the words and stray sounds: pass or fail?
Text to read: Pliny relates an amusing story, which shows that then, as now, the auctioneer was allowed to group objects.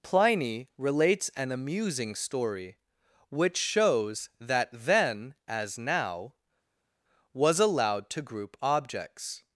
fail